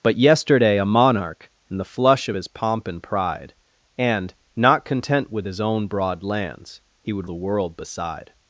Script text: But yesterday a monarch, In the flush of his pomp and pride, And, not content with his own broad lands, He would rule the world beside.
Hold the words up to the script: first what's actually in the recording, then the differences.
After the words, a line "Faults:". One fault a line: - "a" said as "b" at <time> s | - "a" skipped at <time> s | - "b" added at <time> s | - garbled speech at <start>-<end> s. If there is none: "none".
But yesterday a monarch, In the flush of his pomp and pride, And, not content with his own broad lands, He would the world beside.
Faults:
- "rule" skipped at 7.3 s